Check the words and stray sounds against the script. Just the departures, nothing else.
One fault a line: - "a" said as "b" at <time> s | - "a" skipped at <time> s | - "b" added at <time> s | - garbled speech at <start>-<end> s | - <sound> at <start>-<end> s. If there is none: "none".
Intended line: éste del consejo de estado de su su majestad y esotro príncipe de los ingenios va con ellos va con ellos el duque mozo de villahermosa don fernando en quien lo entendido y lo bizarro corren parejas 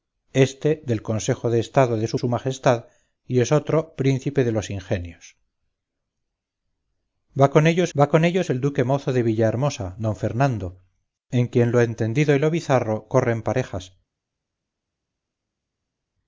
none